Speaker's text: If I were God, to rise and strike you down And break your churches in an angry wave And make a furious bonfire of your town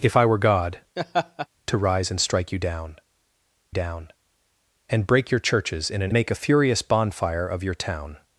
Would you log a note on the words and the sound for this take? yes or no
yes